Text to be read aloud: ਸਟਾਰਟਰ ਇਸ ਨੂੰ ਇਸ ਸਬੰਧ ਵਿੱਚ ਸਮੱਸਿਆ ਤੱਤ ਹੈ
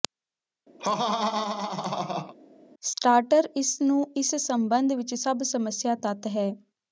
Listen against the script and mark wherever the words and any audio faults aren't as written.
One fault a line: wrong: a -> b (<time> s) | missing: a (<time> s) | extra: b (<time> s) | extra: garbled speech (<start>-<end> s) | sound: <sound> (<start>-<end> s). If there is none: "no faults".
sound: laugh (0.8-2.3 s)
extra: ਸਭ (5.1 s)